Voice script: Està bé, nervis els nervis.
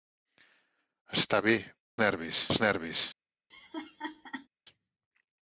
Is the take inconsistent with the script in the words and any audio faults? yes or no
yes